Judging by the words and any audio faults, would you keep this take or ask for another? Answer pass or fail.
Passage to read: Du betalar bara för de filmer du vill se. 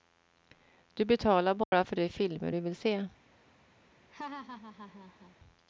fail